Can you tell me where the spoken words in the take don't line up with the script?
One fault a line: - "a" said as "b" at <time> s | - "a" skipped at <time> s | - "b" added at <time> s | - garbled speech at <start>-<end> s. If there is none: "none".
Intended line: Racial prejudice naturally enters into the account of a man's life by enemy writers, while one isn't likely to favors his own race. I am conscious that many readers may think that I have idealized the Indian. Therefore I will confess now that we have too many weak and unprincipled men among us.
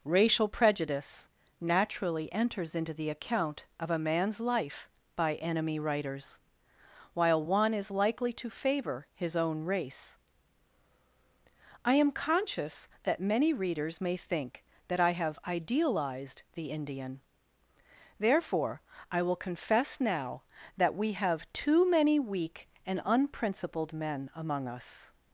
- "isn't" said as "is" at 7.7 s
- "favors" said as "favor" at 8.5 s